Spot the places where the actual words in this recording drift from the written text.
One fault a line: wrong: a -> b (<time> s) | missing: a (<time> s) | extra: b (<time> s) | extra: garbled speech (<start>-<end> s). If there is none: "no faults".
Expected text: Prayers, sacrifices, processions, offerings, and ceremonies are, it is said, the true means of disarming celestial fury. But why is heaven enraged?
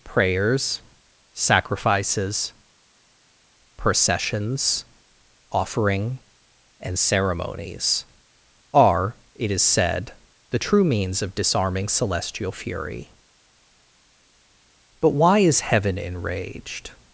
wrong: offerings -> offering (5.5 s)